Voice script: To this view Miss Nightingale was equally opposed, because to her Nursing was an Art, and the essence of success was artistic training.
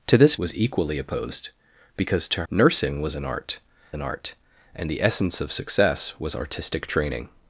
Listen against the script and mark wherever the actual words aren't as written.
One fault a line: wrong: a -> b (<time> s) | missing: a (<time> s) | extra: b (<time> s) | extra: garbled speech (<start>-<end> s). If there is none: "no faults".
missing: view Miss Nightingale (0.3 s)
missing: her (2.4 s)
extra: an Art (3.9 s)